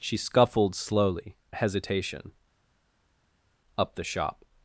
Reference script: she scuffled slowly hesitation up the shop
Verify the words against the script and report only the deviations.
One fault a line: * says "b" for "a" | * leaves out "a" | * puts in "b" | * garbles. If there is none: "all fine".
all fine